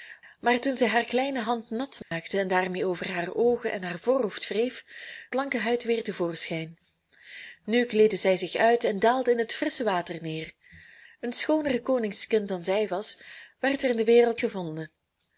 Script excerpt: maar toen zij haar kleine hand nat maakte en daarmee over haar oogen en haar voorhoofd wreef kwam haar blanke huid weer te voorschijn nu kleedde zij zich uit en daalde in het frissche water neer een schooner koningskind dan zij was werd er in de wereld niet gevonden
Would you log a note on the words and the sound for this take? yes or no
yes